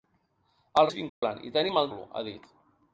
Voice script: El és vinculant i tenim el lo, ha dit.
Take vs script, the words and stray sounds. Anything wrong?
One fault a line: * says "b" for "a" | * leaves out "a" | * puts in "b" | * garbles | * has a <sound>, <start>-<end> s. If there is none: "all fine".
* has a dropout, 1.1-1.2 s